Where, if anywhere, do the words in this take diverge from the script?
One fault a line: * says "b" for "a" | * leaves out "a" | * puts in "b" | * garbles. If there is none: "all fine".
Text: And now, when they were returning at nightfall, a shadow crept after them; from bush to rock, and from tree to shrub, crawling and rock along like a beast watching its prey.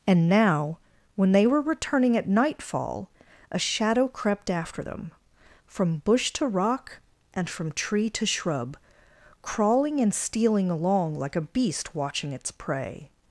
* says "stealing" for "rock"